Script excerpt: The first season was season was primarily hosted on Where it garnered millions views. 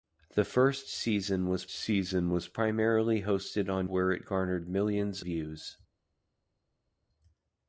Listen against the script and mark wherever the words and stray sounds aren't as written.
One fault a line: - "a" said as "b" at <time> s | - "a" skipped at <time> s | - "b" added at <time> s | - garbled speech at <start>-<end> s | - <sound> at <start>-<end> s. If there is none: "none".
none